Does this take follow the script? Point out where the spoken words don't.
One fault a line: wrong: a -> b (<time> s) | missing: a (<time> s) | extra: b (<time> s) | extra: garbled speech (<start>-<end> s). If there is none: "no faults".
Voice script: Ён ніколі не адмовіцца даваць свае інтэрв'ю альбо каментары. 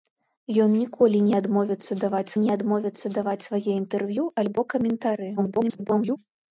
extra: не адмовіцца даваць (2.4 s)
extra: garbled speech (5.4-6.2 s)